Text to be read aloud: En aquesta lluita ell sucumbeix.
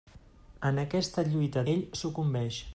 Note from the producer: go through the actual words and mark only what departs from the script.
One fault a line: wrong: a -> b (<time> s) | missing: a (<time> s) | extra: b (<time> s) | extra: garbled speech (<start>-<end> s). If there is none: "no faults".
no faults